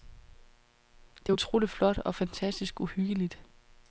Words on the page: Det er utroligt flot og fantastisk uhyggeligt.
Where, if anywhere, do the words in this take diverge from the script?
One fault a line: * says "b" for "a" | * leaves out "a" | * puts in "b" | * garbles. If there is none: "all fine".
all fine